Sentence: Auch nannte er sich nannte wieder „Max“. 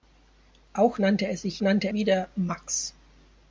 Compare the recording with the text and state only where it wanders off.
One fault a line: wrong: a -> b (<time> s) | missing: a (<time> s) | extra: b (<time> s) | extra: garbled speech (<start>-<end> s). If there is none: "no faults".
no faults